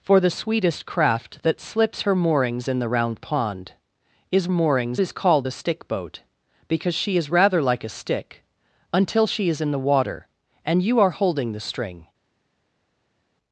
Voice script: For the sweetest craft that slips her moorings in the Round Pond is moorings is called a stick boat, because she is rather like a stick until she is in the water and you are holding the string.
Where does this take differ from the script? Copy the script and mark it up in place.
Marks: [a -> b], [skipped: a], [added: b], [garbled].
For the sweetest craft that slips her moorings in the Round Pond is moorings is called a stick boat, because she is rather like a stick until she is in the water and you are holding the string.